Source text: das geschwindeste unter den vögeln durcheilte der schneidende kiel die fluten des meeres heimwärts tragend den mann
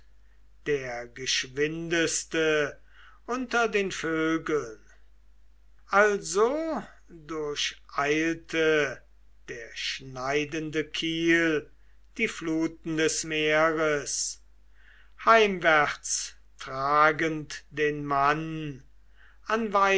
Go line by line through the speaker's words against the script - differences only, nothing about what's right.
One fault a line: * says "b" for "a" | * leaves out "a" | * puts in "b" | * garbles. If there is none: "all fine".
* says "der" for "das"
* puts in "also"